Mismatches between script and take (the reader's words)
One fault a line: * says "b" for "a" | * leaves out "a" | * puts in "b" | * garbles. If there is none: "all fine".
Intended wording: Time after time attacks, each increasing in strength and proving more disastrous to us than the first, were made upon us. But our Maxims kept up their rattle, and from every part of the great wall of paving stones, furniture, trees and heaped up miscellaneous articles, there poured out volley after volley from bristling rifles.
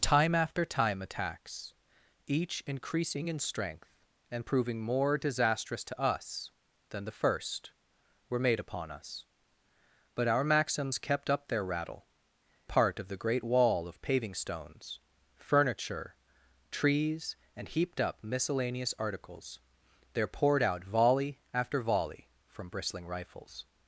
* leaves out "and from every"